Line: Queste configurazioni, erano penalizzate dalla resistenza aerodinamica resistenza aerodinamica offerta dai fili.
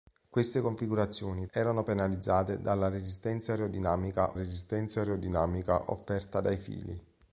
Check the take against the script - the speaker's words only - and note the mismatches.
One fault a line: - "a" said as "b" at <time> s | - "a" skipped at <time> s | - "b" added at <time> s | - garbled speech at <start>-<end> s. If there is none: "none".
none